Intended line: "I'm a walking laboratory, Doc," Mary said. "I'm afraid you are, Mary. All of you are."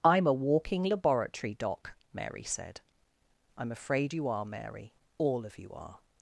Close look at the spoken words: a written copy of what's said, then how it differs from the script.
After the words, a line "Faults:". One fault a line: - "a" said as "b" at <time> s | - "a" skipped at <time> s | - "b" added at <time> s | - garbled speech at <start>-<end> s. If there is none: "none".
"I'm a walking laboratory, Doc," Mary said. "I'm afraid you are, Mary. All of you are."
Faults:
none